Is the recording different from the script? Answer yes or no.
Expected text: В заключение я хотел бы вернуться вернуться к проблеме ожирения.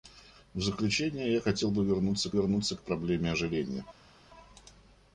no